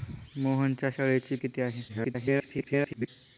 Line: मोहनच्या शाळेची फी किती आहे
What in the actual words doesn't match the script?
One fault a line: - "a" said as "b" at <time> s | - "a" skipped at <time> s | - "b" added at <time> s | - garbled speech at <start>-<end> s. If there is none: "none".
- "फी" skipped at 1.4 s
- garbled speech at 1.9-3.1 s